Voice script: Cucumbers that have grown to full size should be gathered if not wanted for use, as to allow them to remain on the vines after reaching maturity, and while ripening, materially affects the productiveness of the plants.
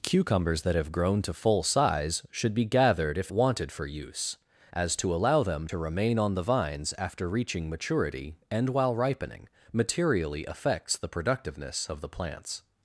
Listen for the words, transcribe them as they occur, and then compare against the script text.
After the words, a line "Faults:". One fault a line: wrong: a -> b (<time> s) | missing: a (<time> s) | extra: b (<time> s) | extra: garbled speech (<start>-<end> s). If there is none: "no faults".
Cucumbers that have grown to full size should be gathered if wanted for use, as to allow them to remain on the vines after reaching maturity, and while ripening, materially affects the productiveness of the plants.
Faults:
missing: not (3.3 s)